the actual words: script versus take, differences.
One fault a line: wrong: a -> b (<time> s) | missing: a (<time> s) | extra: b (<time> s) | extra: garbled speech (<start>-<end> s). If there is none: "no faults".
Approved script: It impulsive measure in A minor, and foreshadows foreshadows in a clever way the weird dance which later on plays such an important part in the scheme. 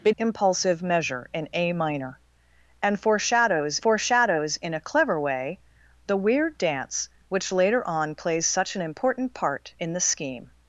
no faults